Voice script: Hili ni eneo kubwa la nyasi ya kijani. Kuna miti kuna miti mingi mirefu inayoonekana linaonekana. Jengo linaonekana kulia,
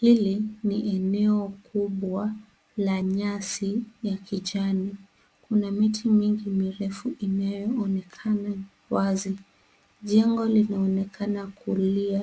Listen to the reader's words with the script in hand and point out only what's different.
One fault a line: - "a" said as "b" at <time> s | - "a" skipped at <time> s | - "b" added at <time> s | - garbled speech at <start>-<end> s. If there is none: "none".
- "kuna miti" skipped at 6.1 s
- "linaonekana" said as "wazi" at 8.9 s